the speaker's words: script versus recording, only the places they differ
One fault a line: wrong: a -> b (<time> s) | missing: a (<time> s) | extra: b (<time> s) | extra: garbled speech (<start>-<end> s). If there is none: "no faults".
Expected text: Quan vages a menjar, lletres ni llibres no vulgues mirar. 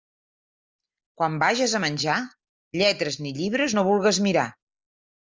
no faults